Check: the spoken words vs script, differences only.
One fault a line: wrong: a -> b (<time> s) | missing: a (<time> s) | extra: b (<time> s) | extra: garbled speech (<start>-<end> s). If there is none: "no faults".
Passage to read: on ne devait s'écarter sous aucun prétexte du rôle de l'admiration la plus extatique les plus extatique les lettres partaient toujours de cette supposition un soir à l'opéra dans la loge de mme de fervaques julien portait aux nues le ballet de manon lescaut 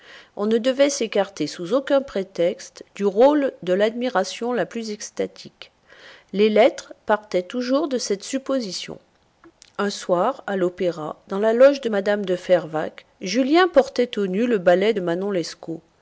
missing: plus extatique les (6.5 s)